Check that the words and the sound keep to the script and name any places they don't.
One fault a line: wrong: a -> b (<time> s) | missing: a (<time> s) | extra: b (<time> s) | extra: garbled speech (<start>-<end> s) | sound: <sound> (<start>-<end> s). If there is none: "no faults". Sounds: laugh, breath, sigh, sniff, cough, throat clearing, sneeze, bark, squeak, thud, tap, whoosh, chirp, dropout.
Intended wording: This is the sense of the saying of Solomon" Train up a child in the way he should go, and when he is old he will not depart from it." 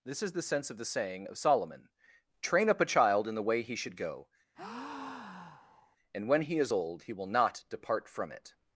sound: breath (4.5-6.0 s)